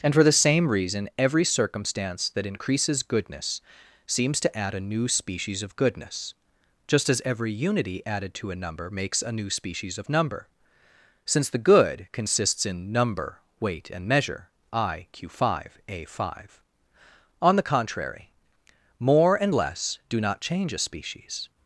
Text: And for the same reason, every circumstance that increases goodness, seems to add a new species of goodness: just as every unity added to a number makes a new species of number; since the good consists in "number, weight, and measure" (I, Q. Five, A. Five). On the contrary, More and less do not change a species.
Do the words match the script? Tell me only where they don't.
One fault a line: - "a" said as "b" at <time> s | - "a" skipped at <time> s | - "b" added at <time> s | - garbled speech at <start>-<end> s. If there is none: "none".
none